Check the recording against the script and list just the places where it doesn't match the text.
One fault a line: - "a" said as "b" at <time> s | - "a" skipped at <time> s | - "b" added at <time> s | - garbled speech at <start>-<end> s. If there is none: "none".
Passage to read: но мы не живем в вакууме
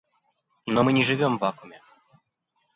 none